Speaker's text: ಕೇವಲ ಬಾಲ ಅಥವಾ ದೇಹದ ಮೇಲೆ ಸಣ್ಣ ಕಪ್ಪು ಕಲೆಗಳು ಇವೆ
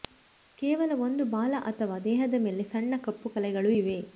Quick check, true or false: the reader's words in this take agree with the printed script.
false